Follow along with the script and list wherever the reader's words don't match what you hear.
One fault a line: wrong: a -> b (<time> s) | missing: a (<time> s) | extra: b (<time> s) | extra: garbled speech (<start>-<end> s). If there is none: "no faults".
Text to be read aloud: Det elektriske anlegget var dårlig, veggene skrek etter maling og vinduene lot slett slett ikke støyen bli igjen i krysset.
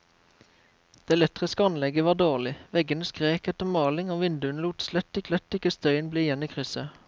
no faults